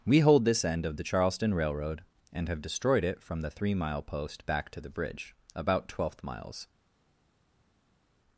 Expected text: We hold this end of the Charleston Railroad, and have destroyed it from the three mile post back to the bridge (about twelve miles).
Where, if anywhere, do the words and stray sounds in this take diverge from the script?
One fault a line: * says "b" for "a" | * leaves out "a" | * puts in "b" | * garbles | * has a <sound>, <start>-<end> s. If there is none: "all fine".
* says "twelfth" for "twelve"